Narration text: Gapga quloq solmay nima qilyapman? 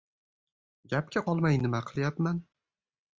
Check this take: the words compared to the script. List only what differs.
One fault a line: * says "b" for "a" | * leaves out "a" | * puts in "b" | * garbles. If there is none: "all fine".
* leaves out "quloq"